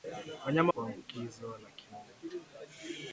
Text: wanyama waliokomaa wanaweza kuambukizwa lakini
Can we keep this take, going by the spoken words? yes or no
no